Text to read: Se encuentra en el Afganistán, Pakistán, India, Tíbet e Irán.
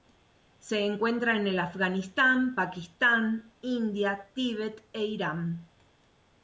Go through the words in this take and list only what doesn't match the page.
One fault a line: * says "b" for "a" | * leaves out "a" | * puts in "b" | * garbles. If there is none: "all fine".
all fine